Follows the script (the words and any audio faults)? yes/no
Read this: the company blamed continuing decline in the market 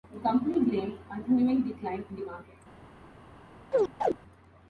no